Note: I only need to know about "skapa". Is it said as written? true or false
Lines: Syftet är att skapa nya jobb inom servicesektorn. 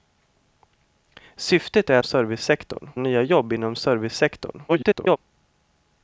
false